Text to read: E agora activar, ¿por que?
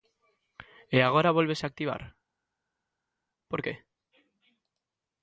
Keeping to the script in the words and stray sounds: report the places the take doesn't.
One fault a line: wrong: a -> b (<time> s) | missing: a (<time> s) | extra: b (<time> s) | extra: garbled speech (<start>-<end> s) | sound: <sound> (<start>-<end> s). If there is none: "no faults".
extra: vólvese (1.4 s)